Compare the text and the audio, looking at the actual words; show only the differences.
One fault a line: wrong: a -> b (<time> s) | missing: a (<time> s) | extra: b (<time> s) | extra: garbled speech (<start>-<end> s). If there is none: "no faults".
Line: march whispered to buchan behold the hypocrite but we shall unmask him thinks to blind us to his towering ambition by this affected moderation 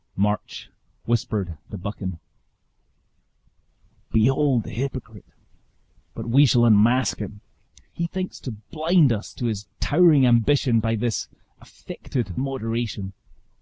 extra: he (7.9 s)